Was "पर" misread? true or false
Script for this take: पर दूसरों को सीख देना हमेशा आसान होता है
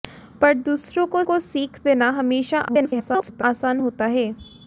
false